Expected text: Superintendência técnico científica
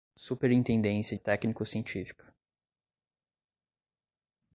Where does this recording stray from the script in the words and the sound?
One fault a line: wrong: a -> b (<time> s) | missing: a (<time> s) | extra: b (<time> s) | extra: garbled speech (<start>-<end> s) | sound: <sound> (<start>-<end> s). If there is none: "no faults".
no faults